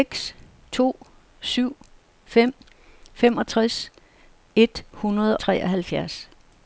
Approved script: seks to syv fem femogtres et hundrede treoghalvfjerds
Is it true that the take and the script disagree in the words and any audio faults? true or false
false